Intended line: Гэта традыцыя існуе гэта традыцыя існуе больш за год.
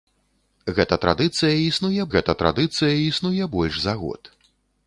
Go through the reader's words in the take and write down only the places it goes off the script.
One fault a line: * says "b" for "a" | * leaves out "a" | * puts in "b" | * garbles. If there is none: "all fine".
all fine